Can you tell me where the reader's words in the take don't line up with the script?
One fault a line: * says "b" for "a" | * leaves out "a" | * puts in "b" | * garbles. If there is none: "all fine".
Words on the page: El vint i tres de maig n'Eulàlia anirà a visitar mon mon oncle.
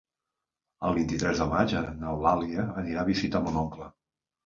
* leaves out "mon"